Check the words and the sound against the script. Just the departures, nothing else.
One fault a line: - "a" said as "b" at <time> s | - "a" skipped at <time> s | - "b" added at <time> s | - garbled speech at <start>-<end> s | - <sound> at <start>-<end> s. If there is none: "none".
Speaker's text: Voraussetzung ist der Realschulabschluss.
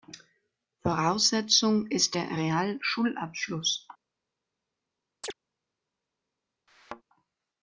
- chirp at 5.2-5.3 s
- thud at 6.7-7.0 s